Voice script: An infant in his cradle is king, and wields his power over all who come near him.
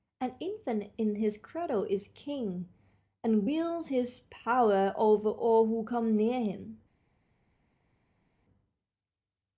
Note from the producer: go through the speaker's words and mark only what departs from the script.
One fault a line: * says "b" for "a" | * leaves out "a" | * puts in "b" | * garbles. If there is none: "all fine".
all fine